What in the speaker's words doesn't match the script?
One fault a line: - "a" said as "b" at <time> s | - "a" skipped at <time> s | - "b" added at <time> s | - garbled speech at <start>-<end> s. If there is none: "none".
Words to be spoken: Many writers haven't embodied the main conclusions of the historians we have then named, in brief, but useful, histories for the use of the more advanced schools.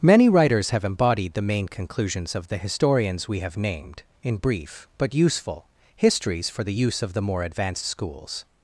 - "haven't" said as "have" at 0.7 s
- "then" skipped at 3.5 s